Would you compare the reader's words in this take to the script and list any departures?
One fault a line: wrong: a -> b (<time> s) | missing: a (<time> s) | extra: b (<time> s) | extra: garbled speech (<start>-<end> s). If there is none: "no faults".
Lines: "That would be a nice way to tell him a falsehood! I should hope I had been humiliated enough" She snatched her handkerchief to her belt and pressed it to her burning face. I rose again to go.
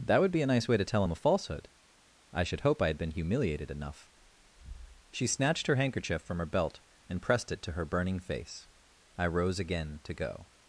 wrong: to -> from (6.2 s)